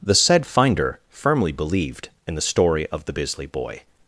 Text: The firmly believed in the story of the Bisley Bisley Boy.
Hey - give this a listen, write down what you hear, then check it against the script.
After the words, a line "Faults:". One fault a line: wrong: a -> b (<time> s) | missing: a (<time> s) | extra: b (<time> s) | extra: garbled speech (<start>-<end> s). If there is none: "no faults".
The said finder firmly believed in the story of the Bisley Boy.
Faults:
extra: said finder (0.1 s)
missing: Bisley (3.5 s)